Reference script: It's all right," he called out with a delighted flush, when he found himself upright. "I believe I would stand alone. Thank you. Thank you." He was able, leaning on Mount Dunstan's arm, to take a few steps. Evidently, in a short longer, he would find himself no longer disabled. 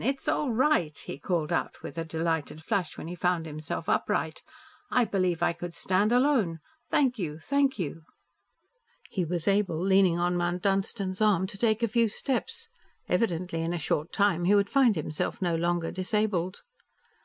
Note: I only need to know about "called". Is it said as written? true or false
true